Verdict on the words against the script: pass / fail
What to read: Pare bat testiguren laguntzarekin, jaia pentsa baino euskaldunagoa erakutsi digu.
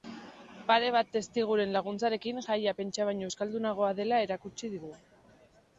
fail